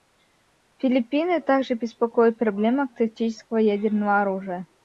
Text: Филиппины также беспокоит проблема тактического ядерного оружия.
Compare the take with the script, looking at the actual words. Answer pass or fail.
pass